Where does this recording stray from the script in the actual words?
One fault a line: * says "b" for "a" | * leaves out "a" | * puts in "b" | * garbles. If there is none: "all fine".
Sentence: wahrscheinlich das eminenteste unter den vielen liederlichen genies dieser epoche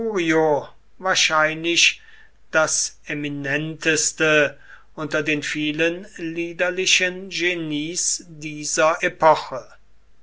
all fine